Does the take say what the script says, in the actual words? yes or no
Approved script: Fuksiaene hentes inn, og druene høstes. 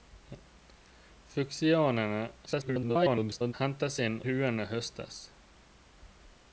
no